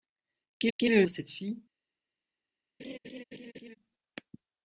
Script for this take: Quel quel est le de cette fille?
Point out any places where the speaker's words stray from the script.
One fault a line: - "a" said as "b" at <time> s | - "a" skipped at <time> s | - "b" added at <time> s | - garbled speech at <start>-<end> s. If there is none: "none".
none